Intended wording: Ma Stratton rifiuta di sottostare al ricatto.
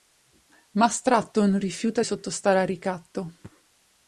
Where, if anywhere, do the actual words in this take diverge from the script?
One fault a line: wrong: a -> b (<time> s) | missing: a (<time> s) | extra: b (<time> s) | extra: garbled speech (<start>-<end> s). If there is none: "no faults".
missing: di (2.0 s)